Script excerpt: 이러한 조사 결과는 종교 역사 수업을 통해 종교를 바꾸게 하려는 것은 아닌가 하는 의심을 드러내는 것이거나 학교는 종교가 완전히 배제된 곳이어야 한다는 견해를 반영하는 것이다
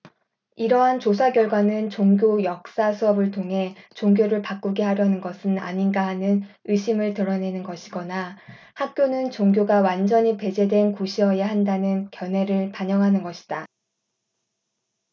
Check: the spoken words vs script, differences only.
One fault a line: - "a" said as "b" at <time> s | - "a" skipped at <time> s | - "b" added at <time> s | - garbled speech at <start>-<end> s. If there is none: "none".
none